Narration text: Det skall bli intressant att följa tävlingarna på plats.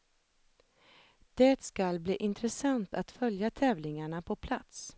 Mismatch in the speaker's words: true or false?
false